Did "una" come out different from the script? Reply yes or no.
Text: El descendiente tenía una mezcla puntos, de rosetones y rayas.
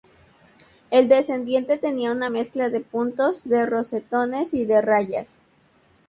no